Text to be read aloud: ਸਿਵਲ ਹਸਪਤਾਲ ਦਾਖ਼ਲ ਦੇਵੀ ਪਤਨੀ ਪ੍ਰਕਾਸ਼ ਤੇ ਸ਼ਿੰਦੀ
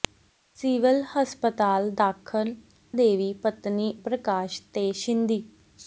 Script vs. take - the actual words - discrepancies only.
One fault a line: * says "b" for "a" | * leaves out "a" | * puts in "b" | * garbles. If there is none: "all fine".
all fine